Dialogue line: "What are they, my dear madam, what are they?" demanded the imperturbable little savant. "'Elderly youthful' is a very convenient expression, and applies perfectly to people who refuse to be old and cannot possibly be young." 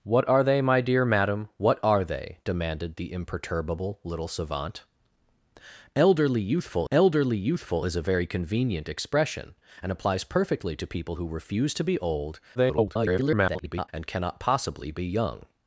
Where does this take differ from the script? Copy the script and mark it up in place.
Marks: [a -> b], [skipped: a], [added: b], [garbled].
"What are they, my dear madam, what are they?" demanded the imperturbable little savant. "'Elderly youthful' [added: elderly youthful] is a very convenient expression, and applies perfectly to people who refuse to be old [garbled] and cannot possibly be young."